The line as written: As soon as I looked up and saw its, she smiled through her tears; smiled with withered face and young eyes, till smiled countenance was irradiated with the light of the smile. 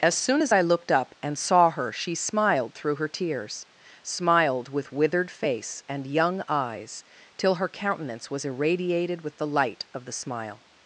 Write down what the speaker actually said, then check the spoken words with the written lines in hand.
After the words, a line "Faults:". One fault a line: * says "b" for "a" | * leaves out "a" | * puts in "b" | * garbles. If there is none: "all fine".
As soon as I looked up and saw her, she smiled through her tears; smiled with withered face and young eyes, till her countenance was irradiated with the light of the smile.
Faults:
* says "her" for "its"
* says "her" for "smiled"